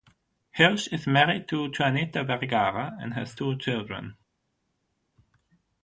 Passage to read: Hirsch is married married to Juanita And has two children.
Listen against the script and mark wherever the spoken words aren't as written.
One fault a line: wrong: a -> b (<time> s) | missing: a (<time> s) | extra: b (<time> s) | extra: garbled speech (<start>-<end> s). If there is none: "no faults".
missing: married (1.5 s)
extra: Vergara (2.2 s)